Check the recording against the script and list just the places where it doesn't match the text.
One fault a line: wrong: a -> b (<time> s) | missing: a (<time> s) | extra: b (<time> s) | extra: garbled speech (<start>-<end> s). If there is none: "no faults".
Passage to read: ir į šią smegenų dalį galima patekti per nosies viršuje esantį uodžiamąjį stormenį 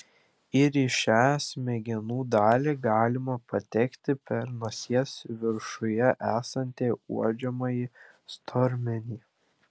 no faults